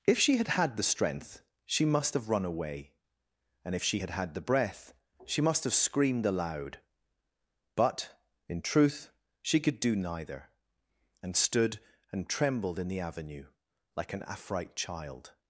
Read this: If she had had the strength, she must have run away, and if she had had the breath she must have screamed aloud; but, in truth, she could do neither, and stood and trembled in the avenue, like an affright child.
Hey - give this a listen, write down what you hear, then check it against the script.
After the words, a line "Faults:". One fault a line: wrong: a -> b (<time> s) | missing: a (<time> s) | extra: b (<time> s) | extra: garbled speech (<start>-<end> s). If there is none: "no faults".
If she had had the strength, she must have run away, and if she had had the breath she must have screamed aloud; but, in truth, she could do neither, and stood and trembled in the avenue, like an affright child.
Faults:
no faults